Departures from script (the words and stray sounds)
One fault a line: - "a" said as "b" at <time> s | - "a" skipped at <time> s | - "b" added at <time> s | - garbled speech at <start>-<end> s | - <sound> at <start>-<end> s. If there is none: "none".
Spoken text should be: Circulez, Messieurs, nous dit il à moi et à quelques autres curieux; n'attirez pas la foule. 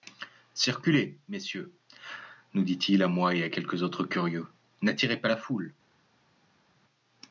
none